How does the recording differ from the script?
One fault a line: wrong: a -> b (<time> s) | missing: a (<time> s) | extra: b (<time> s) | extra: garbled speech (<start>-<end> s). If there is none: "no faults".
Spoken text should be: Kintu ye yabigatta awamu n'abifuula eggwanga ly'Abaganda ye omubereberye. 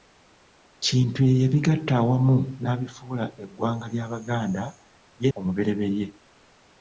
no faults